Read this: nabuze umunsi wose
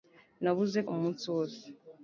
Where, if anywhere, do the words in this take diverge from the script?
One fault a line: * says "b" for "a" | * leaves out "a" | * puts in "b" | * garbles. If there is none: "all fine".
all fine